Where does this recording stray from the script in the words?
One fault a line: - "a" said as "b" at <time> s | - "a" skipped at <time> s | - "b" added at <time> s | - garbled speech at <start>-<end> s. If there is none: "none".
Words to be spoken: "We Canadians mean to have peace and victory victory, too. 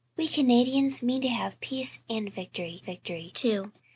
none